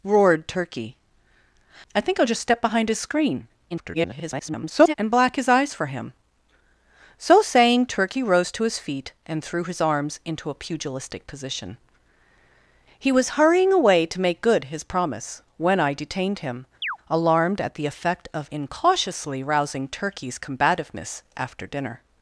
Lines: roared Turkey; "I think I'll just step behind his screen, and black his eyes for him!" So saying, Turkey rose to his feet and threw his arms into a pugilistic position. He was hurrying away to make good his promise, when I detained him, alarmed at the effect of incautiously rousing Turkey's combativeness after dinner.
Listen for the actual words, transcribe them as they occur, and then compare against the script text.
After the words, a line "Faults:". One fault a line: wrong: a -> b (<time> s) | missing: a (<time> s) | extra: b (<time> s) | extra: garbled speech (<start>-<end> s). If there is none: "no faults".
roared Turkey; "I think I'll just step behind his screen, [garbled] and black his eyes for him!" So saying, Turkey rose to his feet and threw his arms into a pugilistic position. He was hurrying away to make good his promise, when I detained him, alarmed at the effect of incautiously rousing Turkey's combativeness after dinner.
Faults:
extra: garbled speech (3.7-4.9 s)